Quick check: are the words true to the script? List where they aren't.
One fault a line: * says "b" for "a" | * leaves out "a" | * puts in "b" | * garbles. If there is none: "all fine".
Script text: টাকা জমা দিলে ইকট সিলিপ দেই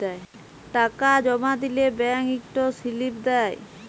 * puts in "ব্যাংক"